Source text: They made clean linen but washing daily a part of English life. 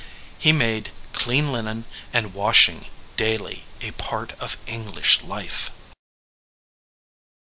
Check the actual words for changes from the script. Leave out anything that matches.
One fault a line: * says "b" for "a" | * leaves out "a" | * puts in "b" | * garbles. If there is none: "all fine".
* says "He" for "They"
* says "and" for "but"